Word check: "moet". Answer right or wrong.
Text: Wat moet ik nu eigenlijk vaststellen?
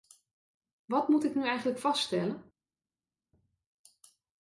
right